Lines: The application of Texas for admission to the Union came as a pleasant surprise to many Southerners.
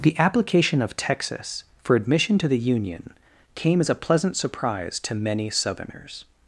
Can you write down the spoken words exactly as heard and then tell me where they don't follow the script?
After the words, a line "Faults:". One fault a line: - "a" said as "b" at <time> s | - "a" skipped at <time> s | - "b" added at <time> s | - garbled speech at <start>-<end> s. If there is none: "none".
The application of Texas for admission to the Union came as a pleasant surprise to many Southerners.
Faults:
none